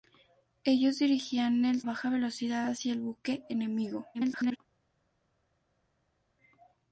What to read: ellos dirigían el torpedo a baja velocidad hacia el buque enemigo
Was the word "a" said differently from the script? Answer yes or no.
yes